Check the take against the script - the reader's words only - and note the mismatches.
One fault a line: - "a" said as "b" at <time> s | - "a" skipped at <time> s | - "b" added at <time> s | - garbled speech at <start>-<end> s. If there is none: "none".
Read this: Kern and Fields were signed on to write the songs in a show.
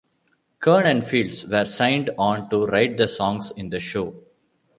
- "a" said as "the" at 3.7 s